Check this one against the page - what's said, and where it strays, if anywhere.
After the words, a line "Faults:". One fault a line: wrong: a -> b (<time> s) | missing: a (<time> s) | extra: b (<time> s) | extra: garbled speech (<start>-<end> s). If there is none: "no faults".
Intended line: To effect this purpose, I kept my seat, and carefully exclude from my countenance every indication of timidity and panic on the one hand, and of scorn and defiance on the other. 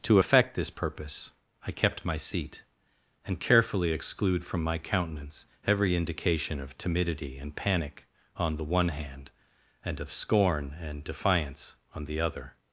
To effect this purpose, I kept my seat, and carefully exclude from my countenance every indication of timidity and panic on the one hand, and of scorn and defiance on the other.
Faults:
no faults